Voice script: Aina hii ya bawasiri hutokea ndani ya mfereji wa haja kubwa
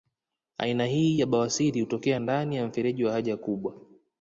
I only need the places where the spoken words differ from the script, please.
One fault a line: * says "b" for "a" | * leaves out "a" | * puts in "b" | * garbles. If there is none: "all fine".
all fine